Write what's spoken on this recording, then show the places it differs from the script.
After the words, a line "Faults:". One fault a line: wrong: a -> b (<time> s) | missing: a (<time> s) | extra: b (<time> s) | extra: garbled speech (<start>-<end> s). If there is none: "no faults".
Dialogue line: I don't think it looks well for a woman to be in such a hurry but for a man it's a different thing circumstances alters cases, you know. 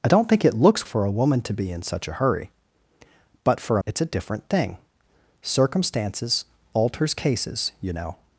I don't think it looks for a woman to be in such a hurry but for a it's a different thing circumstances alters cases, you know.
Faults:
missing: well (0.9 s)
missing: man (3.8 s)